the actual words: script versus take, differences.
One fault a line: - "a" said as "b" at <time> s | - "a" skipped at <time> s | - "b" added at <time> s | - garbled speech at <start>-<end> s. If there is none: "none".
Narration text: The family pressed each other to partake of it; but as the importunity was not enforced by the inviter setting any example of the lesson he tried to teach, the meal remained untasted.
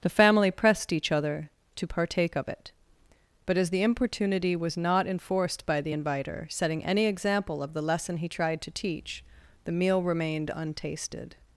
none